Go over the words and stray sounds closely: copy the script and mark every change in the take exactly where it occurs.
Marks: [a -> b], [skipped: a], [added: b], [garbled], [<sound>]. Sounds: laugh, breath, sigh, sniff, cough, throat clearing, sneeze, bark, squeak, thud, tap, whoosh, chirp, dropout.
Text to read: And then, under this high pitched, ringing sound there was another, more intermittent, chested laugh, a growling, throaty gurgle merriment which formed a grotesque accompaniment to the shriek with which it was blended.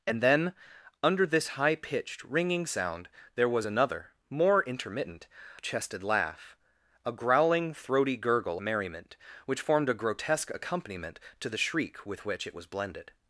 And then, under this high pitched, ringing sound there was another, more intermittent, chested laugh, a growling, throaty gurgle merriment which formed a grotesque accompaniment to the shriek with which it was blended.